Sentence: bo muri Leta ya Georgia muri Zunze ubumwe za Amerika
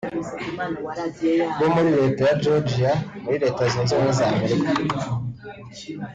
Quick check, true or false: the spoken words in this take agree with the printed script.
false